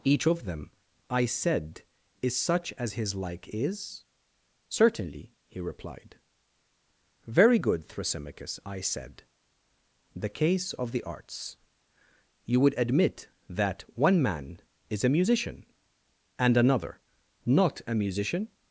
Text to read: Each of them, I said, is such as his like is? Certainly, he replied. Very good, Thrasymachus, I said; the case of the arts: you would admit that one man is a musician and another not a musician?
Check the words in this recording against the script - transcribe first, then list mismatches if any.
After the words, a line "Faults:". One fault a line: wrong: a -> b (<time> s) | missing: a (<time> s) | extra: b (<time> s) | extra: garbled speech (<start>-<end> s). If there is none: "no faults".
Each of them, I said, is such as his like is? Certainly, he replied. Very good, Thrasymachus, I said; the case of the arts: you would admit that one man is a musician and another not a musician?
Faults:
no faults